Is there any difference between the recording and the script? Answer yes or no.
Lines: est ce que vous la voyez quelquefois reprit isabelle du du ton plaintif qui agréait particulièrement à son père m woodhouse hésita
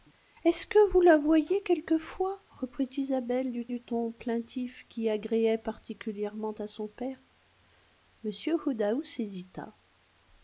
no